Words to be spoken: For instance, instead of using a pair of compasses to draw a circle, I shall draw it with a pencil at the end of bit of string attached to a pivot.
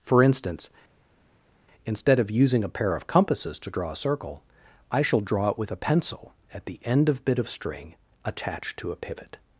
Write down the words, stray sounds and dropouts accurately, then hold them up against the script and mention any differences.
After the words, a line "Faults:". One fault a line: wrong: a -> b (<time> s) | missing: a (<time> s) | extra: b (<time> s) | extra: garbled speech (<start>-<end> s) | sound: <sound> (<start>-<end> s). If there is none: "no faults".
For instance, instead of using a pair of compasses to draw a circle, I shall draw it with a pencil at the end of bit of string attached to a pivot.
Faults:
no faults